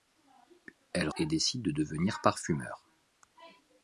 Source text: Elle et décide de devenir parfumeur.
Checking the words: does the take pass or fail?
pass